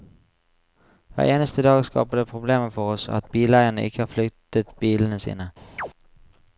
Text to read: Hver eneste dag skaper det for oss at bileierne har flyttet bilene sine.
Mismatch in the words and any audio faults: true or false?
true